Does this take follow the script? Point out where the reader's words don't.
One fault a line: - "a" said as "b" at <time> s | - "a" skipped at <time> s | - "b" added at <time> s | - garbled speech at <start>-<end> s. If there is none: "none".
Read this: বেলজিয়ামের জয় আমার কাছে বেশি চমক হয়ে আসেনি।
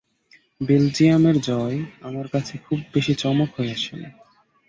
- "খুব" added at 2.6 s